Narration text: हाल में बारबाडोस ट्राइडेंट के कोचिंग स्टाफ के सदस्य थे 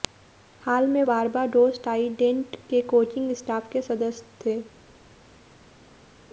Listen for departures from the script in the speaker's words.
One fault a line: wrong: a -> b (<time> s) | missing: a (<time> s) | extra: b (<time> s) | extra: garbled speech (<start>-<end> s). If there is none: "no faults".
no faults